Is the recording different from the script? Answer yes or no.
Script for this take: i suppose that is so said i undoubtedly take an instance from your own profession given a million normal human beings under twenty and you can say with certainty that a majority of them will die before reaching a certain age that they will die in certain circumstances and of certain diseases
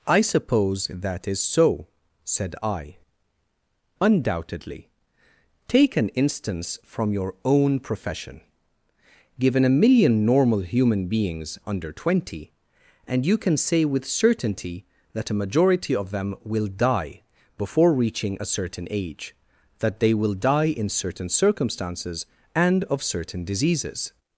no